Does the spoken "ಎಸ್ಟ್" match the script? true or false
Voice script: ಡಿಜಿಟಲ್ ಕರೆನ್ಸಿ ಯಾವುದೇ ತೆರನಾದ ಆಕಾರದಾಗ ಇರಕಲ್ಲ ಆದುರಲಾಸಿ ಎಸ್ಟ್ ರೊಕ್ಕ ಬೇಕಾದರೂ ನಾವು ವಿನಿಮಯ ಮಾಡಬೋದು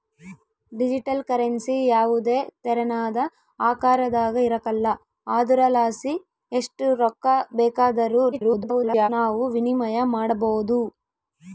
true